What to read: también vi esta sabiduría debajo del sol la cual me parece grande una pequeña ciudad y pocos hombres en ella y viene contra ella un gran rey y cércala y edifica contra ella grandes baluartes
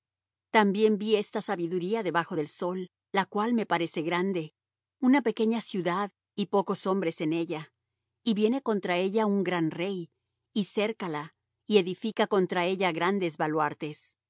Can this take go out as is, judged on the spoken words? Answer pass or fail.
pass